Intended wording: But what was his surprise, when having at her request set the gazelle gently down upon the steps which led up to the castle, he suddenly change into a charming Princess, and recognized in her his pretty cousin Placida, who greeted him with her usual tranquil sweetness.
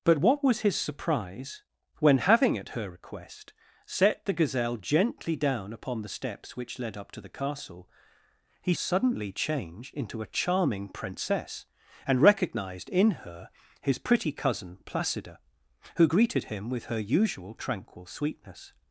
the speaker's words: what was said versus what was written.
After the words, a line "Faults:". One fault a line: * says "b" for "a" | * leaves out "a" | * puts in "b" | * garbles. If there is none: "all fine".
But what was his surprise, when having at her request set the gazelle gently down upon the steps which led up to the castle, he suddenly change into a charming Princess, and recognized in her his pretty cousin Placida, who greeted him with her usual tranquil sweetness.
Faults:
all fine